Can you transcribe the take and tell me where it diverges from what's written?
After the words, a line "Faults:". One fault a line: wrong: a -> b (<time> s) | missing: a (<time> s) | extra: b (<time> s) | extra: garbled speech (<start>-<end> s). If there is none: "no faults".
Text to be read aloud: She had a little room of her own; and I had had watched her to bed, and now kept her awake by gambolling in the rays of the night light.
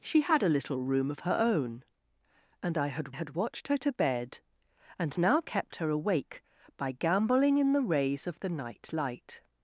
She had a little room of her own; and I had had watched her to bed, and now kept her awake by gambolling in the rays of the night light.
Faults:
no faults